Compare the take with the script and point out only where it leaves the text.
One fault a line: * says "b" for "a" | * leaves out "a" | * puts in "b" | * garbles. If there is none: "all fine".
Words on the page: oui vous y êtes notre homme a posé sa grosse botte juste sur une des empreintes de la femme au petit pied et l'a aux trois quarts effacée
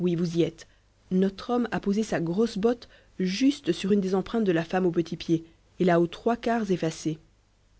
all fine